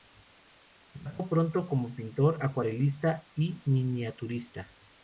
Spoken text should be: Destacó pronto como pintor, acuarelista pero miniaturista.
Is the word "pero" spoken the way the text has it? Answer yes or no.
no